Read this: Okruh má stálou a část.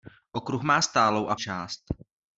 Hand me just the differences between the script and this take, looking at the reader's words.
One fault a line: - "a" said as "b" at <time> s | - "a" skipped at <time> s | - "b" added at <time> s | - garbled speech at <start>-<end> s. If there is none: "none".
none